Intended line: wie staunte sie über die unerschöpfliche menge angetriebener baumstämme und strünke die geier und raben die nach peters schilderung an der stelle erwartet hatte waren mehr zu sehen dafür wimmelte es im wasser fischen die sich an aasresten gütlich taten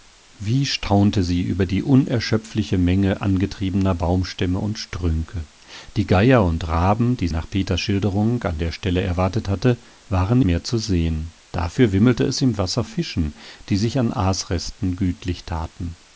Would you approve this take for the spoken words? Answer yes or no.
yes